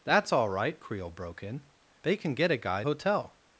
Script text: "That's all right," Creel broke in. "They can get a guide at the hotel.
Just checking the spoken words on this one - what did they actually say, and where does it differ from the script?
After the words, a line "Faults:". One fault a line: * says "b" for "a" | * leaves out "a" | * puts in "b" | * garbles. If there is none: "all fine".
"That's all right," Creel broke in. "They can get a guide hotel.
Faults:
* leaves out "at the"